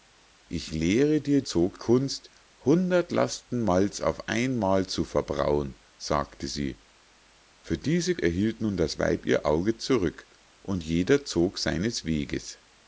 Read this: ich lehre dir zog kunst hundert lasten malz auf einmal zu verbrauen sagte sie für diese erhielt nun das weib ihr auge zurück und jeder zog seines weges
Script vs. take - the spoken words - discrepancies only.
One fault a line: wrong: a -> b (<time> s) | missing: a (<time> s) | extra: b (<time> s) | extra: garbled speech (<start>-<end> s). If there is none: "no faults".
no faults